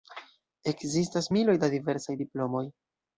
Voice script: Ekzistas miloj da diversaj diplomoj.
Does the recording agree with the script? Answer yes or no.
yes